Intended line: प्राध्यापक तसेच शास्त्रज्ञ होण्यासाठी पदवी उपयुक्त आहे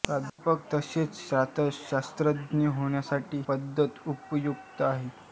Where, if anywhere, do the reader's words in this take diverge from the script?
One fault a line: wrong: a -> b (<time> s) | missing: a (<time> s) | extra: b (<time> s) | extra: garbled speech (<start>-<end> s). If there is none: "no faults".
no faults